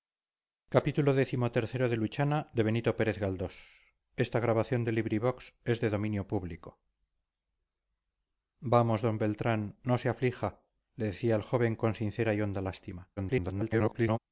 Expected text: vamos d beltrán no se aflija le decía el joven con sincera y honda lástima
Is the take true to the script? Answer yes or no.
no